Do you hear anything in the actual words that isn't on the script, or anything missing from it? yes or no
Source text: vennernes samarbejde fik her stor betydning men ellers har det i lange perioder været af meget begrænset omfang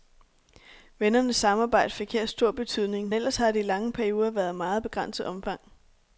yes